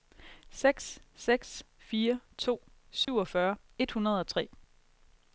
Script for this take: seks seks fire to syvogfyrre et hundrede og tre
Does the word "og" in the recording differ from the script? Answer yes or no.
no